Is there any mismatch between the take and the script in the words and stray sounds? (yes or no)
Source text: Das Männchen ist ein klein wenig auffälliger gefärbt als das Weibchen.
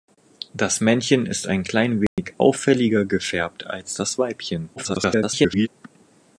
yes